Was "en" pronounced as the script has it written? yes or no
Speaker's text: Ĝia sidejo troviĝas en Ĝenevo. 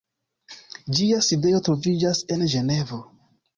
yes